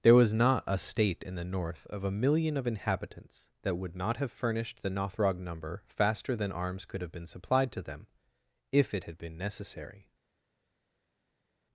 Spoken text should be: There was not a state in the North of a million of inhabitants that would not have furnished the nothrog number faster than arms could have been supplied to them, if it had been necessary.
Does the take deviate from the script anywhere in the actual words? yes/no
no